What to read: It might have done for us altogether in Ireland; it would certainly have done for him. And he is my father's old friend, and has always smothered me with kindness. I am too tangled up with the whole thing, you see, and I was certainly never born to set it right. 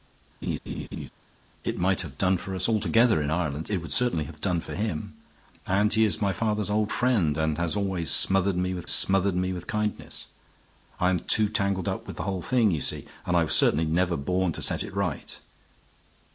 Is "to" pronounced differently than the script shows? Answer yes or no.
no